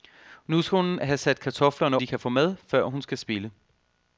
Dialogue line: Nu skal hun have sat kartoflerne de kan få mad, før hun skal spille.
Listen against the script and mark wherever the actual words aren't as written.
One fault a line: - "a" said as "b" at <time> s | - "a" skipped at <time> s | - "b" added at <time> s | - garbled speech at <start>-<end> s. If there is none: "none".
none